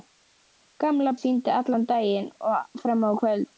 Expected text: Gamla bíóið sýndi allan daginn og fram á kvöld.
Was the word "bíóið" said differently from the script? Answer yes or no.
yes